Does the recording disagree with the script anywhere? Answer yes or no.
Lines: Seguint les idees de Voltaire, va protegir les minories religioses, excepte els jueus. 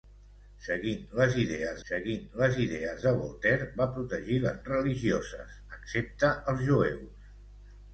yes